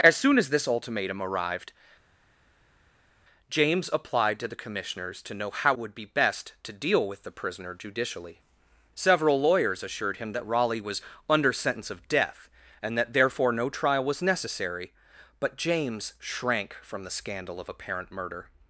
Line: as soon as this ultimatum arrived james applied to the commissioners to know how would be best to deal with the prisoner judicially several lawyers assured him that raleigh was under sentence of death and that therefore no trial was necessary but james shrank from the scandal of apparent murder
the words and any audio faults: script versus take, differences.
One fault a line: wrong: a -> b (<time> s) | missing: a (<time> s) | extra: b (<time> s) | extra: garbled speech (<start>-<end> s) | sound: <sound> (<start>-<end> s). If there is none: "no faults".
no faults